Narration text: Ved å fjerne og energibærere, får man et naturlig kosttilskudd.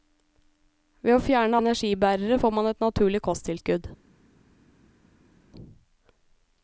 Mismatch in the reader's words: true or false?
false